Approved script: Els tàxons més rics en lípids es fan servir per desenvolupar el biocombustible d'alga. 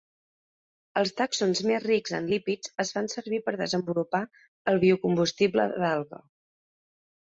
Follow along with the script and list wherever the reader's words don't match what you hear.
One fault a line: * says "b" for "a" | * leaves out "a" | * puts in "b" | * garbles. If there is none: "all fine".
all fine